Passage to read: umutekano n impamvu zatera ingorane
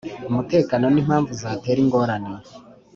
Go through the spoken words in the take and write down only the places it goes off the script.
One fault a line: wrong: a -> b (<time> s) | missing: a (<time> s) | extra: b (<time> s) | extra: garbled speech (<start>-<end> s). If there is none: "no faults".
no faults